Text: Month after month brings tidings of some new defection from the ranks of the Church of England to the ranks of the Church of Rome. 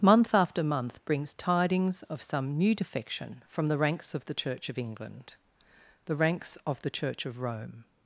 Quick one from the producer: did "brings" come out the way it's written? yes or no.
yes